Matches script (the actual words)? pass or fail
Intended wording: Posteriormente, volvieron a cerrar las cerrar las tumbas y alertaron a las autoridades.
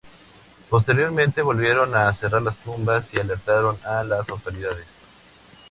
fail